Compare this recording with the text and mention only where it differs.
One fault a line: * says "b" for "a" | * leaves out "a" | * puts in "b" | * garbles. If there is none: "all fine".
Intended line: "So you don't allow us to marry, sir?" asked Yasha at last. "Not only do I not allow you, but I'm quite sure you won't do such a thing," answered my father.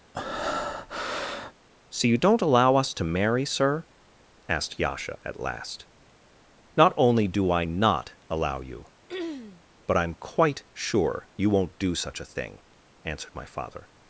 all fine